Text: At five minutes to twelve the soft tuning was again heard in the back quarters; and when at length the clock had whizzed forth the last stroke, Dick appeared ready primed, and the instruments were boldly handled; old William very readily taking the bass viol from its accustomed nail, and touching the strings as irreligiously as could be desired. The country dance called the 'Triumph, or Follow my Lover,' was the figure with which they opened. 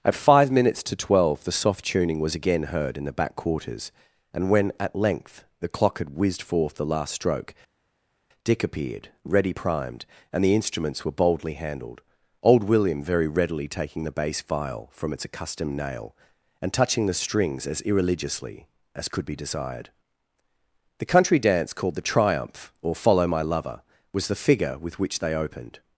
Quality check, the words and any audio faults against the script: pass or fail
pass